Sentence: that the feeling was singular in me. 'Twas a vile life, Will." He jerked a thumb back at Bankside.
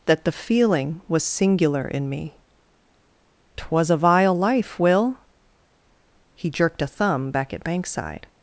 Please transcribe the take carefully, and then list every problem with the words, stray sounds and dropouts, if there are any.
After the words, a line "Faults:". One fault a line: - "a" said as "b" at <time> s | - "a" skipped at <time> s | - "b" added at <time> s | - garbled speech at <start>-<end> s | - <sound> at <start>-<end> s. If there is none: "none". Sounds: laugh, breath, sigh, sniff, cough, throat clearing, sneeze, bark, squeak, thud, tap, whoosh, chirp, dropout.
that the feeling was singular in me. 'Twas a vile life, Will." He jerked a thumb back at Bankside.
Faults:
none